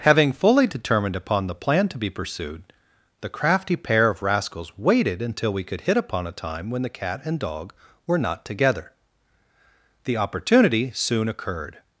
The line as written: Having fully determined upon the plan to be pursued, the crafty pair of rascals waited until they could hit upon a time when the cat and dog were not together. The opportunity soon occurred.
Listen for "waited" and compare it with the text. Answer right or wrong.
right